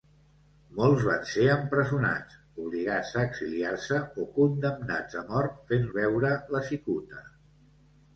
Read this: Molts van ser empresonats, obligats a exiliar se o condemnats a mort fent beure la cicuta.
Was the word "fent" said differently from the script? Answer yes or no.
no